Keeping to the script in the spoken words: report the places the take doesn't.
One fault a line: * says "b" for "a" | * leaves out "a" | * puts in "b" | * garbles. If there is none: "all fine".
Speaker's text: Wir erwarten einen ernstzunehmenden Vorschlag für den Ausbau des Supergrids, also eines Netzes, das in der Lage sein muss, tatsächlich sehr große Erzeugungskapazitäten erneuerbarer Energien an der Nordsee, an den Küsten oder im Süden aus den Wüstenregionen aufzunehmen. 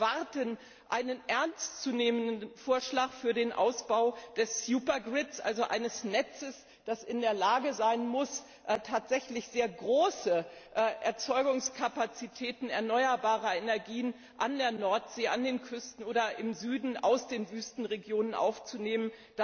all fine